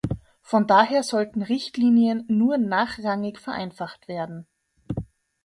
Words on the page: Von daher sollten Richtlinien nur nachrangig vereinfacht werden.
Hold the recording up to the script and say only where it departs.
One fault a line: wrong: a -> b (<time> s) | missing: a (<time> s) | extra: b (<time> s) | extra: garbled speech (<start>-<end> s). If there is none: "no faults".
no faults